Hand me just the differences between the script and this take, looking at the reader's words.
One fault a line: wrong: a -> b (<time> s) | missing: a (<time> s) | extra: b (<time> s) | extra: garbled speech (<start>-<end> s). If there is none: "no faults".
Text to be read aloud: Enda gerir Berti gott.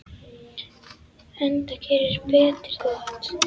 no faults